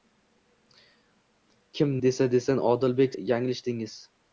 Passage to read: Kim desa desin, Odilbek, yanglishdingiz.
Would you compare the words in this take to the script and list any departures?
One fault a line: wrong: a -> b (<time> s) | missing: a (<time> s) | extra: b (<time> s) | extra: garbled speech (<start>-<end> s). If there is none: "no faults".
no faults